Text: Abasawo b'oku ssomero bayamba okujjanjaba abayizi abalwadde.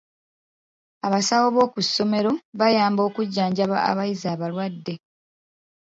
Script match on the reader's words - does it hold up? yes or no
yes